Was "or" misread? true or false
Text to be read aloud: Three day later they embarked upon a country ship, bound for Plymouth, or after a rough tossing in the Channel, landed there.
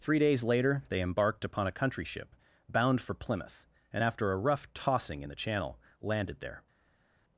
true